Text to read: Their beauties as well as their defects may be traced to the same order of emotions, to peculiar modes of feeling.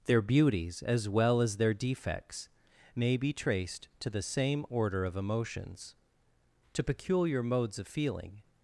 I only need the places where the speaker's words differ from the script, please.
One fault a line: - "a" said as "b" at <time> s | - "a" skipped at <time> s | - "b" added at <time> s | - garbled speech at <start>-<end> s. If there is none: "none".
none